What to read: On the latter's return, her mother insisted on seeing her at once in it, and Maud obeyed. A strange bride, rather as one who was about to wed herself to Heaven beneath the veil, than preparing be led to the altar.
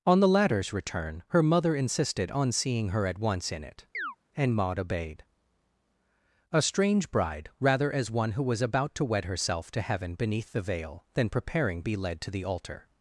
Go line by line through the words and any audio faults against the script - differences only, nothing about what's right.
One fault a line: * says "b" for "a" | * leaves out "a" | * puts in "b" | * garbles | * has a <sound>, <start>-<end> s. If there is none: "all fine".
* has a chirp, 3.9-4.2 s